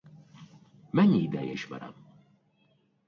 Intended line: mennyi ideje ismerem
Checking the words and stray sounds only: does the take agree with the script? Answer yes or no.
yes